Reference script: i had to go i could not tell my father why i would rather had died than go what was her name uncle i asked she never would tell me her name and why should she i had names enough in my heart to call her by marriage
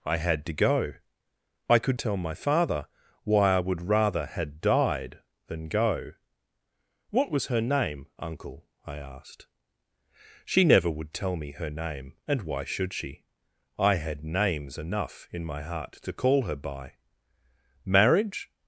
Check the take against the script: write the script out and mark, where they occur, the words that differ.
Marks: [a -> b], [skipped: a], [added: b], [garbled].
i had to go i could [skipped: not] tell my father why i would rather had died than go what was her name uncle i asked she never would tell me her name and why should she i had names enough in my heart to call her by marriage